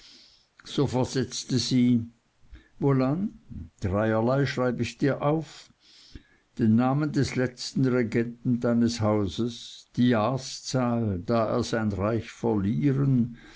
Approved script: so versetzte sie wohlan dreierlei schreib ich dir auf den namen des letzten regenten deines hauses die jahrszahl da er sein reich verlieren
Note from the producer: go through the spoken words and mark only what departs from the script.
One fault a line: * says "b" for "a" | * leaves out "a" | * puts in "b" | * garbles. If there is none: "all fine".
all fine